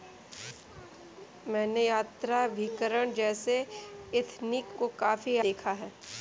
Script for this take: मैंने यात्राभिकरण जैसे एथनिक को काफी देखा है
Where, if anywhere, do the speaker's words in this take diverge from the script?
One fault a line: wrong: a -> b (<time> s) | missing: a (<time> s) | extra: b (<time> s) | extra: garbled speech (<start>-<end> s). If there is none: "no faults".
no faults